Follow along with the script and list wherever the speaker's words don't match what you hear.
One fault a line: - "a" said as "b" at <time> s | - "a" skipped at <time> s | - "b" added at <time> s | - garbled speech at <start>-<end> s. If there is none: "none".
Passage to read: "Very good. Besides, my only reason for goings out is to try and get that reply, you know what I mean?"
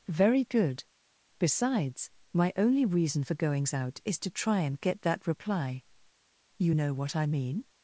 none